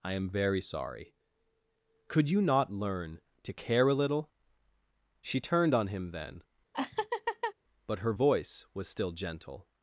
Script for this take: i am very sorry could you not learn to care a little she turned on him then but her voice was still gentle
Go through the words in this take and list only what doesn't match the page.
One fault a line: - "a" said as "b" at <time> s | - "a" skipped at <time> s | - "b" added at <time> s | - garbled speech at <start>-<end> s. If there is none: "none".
none